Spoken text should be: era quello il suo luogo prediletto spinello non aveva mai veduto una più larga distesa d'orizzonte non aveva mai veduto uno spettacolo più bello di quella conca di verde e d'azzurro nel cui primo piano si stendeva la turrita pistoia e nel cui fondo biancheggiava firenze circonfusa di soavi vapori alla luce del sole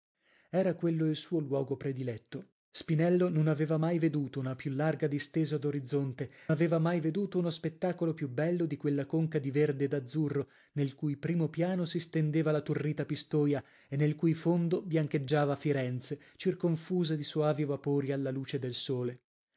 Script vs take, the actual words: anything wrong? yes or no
yes